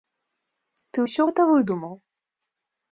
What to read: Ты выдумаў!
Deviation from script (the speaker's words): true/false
true